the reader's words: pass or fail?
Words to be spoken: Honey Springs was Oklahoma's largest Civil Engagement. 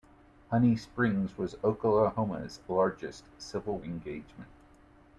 pass